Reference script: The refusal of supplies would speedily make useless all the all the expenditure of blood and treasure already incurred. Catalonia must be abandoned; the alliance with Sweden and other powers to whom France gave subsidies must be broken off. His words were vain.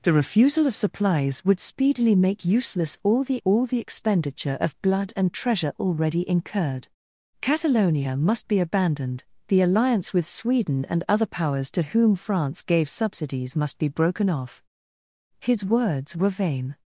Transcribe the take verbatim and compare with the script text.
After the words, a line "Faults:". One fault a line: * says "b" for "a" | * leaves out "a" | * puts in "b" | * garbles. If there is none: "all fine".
The refusal of supplies would speedily make useless all the all the expenditure of blood and treasure already incurred. Catalonia must be abandoned; the alliance with Sweden and other powers to whom France gave subsidies must be broken off. His words were vain.
Faults:
all fine